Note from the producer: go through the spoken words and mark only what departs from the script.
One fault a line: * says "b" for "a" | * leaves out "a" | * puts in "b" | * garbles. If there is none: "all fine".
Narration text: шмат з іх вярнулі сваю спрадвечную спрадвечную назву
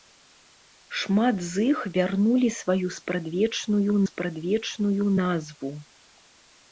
all fine